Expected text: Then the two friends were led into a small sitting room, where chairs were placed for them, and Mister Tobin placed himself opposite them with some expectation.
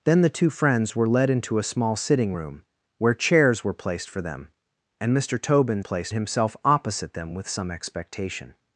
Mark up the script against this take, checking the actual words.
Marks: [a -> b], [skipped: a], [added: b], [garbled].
Then the two friends were led into a small sitting room, where chairs were placed for them, and Mister Tobin placed himself opposite them with some expectation.